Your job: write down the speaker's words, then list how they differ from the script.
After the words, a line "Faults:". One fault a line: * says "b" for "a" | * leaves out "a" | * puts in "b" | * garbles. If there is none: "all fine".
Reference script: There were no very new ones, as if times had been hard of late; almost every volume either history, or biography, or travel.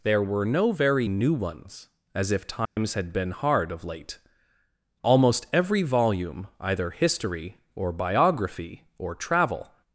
There were no very new ones, as if times had been hard of late; almost every volume either history, or biography, or travel.
Faults:
all fine